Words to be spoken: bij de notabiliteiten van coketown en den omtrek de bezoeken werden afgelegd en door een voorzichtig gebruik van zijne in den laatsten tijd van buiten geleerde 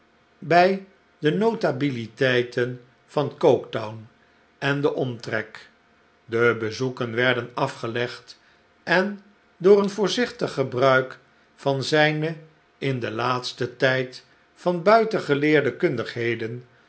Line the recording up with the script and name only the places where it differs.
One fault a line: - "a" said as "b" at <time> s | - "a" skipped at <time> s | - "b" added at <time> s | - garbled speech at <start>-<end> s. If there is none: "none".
none